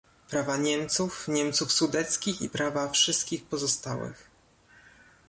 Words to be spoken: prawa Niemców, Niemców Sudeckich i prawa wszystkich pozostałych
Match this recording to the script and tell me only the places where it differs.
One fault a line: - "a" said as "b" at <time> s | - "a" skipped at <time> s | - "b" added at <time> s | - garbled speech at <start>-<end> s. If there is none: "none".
none